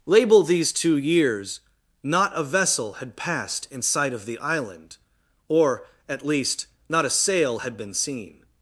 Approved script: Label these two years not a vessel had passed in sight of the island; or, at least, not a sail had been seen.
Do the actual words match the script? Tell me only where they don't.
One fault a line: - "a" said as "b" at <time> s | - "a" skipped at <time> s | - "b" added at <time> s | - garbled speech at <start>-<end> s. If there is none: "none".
none